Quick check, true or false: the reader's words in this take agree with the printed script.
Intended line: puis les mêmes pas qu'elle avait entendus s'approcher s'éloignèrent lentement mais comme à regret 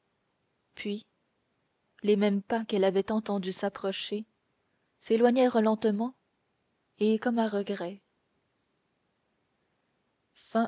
false